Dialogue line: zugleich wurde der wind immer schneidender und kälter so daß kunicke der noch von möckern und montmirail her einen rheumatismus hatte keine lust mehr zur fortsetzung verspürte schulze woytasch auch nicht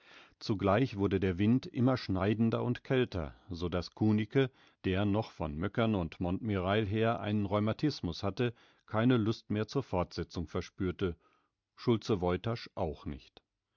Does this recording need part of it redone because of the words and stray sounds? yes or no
no